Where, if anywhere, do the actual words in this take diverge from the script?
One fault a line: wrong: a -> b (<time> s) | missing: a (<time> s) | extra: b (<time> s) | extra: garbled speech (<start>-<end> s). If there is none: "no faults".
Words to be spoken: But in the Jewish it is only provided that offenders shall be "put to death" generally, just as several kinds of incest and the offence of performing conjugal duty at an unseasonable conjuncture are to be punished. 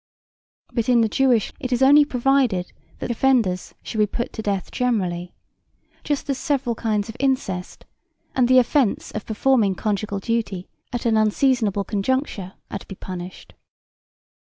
no faults